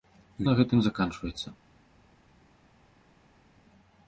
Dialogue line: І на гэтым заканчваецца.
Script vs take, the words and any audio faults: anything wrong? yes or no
no